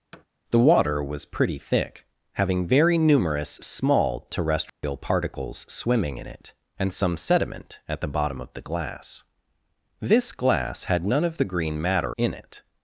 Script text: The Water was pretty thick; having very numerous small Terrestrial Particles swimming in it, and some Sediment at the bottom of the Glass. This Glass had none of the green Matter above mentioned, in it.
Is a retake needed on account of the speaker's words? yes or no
yes